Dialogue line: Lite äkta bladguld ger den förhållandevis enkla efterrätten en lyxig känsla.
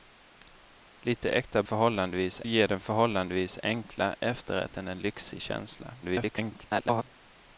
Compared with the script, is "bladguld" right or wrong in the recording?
wrong